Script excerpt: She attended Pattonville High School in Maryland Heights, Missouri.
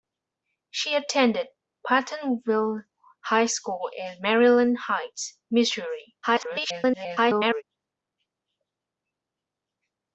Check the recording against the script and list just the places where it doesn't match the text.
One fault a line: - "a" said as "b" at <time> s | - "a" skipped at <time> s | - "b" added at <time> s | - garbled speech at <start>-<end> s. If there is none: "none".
- garbled speech at 6.2-7.6 s